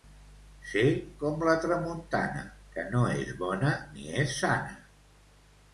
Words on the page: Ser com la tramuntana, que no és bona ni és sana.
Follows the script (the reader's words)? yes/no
yes